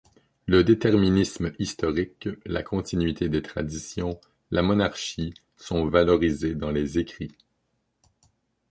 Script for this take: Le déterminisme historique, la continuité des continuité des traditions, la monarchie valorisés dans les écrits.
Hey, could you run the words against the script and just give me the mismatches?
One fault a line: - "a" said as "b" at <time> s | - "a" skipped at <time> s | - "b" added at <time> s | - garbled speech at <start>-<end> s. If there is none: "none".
- "continuité des" skipped at 3.4 s
- "sont" added at 5.6 s